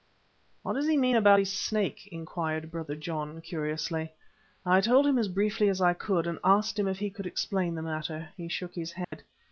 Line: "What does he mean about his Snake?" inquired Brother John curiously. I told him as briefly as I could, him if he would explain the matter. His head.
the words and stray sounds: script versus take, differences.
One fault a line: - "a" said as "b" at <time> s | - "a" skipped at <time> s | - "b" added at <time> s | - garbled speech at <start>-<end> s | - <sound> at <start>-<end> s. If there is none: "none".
- "and asked" added at 6.3 s
- "would" said as "could" at 7.1 s
- "He shook" added at 8.4 s
- dropout at 9.0-9.1 s